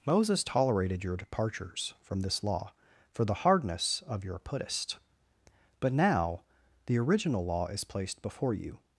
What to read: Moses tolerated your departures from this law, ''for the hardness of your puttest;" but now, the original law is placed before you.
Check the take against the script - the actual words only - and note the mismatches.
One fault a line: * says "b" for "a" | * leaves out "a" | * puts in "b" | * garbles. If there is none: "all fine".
all fine